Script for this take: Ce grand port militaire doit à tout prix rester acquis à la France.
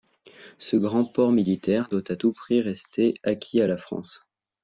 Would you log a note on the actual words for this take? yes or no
no